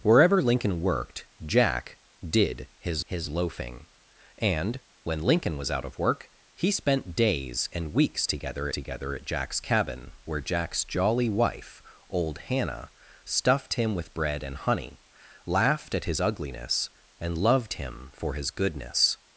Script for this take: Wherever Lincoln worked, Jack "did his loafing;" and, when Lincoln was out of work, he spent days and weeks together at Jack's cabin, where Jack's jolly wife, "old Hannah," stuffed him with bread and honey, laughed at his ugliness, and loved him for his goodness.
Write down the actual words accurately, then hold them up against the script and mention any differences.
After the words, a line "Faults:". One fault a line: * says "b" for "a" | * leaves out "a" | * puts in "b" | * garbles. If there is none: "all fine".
Wherever Lincoln worked, Jack "did his his loafing;" and, when Lincoln was out of work, he spent days and weeks together together at Jack's cabin, where Jack's jolly wife, "old Hannah," stuffed him with bread and honey, laughed at his ugliness, and loved him for his goodness.
Faults:
* puts in "his"
* puts in "together"